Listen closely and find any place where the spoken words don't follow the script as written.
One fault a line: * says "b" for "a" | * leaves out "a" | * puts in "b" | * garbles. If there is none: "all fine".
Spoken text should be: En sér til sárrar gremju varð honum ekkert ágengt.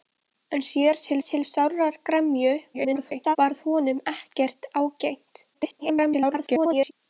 * puts in "til"
* garbles
* garbles